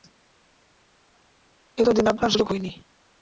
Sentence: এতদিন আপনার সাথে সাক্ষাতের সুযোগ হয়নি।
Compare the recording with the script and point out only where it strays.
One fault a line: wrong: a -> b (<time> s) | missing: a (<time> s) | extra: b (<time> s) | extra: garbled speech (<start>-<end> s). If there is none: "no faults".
missing: সাথে সাক্ষাতের (2.3 s)